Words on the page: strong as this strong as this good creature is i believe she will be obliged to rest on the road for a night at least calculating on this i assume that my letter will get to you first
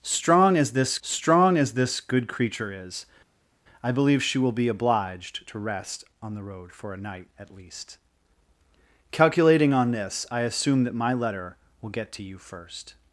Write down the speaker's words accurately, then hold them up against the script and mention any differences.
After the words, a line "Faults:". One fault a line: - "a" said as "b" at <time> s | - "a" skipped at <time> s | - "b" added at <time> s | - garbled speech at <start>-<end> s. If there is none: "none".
strong as this strong as this good creature is i believe she will be obliged to rest on the road for a night at least calculating on this i assume that my letter will get to you first
Faults:
none